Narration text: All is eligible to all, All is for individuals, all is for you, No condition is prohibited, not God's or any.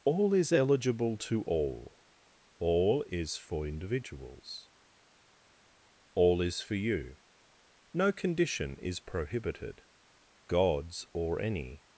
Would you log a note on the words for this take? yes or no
yes